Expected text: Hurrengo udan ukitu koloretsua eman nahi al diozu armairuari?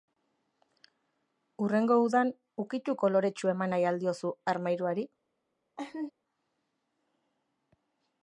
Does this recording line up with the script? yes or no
yes